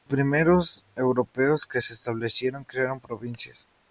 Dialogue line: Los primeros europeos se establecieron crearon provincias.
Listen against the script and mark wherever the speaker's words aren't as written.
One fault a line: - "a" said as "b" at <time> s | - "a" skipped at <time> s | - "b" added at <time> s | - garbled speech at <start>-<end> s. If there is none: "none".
- "que" added at 1.7 s